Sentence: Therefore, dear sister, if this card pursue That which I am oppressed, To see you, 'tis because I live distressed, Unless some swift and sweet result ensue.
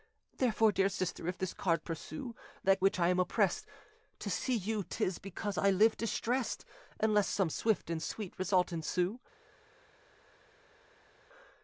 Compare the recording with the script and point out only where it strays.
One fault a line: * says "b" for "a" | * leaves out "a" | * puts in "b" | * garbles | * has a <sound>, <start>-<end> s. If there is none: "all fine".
all fine